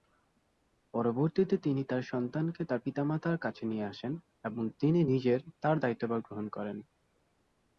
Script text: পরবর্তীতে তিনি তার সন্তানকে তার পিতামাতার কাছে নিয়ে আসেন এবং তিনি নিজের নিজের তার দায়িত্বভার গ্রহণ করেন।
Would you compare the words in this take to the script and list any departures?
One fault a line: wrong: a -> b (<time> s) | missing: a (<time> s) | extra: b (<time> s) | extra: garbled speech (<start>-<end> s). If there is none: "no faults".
missing: নিজের (5.4 s)